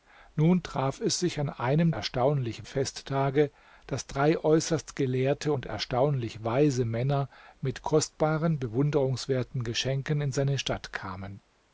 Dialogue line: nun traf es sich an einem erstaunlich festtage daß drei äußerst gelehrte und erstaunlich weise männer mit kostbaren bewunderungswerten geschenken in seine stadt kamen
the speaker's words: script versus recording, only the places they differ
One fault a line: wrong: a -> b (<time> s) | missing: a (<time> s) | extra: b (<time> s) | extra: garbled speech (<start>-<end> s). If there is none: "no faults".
no faults